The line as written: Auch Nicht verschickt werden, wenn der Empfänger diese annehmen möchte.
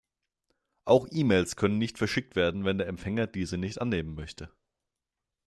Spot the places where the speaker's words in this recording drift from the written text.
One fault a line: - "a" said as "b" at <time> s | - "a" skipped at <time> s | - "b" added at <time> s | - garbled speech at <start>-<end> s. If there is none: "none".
- "E Mails können" added at 1.1 s
- "nicht" added at 3.6 s